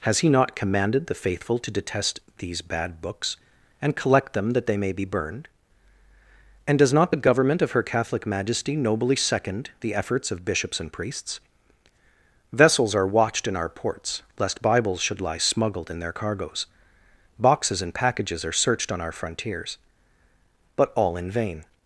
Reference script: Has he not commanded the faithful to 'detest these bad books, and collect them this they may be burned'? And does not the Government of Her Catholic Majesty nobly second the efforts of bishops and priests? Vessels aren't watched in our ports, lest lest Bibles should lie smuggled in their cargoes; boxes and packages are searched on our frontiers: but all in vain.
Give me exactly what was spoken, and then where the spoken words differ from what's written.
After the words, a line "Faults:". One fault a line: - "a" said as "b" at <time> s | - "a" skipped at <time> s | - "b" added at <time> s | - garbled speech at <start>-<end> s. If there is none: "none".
Has he not commanded the faithful to 'detest these bad books, and collect them that they may be burned'? And does not the Government of Her Catholic Majesty nobly second the efforts of bishops and priests? Vessels are watched in our ports, lest Bibles should lie smuggled in their cargoes; boxes and packages are searched on our frontiers: but all in vain.
Faults:
- "this" said as "that" at 4.5 s
- "aren't" said as "are" at 12.9 s
- "lest" skipped at 14.6 s